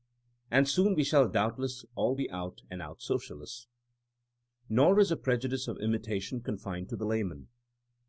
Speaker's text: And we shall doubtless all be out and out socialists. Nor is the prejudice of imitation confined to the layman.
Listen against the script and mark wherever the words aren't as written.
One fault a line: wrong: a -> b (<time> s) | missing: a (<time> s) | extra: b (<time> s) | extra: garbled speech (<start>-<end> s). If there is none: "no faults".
extra: soon (0.7 s)